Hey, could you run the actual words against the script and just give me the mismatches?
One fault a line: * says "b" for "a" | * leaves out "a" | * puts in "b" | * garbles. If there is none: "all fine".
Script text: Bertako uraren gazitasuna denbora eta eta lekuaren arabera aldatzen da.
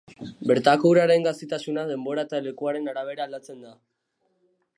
* leaves out "eta"